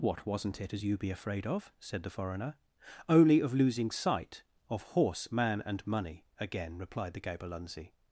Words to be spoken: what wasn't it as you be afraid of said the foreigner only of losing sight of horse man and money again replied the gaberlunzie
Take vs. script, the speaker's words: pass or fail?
pass